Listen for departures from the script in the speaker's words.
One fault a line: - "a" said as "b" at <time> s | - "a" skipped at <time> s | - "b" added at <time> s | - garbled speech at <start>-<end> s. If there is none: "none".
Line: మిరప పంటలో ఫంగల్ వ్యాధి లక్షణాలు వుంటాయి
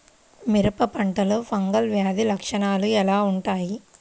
- "ఎలా" added at 2.9 s